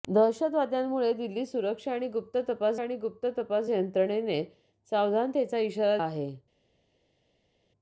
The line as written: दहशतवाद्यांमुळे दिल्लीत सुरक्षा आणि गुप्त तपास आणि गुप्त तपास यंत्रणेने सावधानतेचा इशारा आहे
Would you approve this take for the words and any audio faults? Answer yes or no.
yes